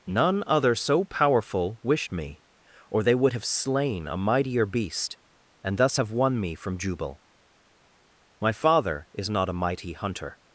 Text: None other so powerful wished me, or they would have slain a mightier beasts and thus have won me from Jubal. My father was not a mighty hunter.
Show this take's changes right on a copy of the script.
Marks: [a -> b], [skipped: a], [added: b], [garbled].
None other so powerful wished me, or they would have slain a mightier [beasts -> beast] and thus have won me from Jubal. My father [was -> is] not a mighty hunter.